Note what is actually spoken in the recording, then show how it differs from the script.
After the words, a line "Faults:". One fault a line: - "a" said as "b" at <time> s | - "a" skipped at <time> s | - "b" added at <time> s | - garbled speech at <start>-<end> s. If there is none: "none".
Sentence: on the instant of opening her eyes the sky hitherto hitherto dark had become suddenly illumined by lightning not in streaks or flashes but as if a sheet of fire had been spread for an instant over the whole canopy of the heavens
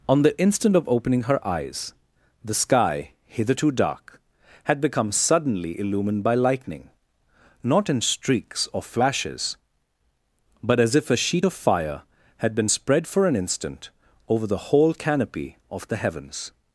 on the instant of opening her eyes the sky hitherto dark had become suddenly illumined by lightning not in streaks or flashes but as if a sheet of fire had been spread for an instant over the whole canopy of the heavens
Faults:
- "hitherto" skipped at 3.7 s